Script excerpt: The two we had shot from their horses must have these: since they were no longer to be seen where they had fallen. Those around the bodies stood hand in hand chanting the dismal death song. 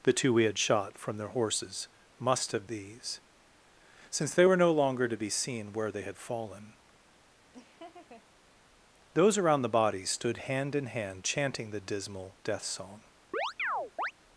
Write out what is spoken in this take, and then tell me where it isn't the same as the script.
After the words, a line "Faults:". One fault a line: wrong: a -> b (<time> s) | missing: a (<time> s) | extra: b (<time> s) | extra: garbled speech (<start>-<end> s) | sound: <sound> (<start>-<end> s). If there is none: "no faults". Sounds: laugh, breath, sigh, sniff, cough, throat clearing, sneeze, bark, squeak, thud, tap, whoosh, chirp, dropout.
The two we had shot from their horses must have these: since they were no longer to be seen where they had fallen. Those around the bodies stood hand in hand chanting the dismal death song.
Faults:
sound: laugh (7.5-8.2 s)
sound: chirp (13.3-14.1 s)